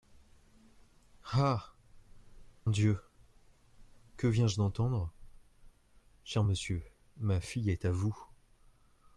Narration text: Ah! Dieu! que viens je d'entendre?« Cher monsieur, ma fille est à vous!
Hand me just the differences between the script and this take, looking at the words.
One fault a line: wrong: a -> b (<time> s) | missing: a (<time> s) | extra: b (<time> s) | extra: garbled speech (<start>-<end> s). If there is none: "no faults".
no faults